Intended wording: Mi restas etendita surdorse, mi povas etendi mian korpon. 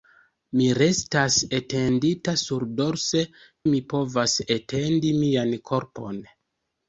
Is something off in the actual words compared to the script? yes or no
no